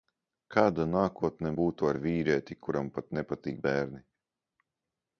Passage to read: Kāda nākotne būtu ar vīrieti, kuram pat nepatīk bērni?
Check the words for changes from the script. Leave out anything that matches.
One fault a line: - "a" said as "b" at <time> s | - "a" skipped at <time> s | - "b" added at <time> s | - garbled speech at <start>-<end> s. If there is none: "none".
none